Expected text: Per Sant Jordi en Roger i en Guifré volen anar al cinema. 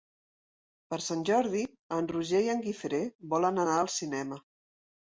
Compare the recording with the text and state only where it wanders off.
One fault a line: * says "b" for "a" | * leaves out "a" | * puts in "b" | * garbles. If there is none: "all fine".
all fine